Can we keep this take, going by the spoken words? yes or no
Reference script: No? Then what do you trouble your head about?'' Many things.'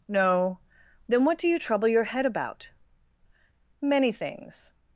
yes